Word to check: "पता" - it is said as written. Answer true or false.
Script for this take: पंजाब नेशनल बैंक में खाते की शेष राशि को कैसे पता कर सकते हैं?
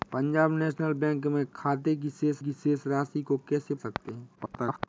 false